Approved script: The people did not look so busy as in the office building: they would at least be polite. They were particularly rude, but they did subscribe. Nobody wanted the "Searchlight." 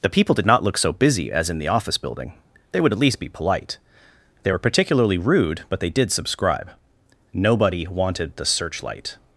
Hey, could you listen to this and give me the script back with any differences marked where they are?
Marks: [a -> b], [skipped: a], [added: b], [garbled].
The people did not look so busy as in the office building: they would at least be polite. They were particularly rude, but they did subscribe. Nobody wanted the "Searchlight."